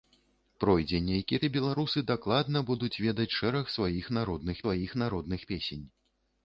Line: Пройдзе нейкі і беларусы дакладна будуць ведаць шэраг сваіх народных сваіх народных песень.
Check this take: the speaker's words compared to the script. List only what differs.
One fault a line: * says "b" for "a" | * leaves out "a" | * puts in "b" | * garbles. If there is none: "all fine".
all fine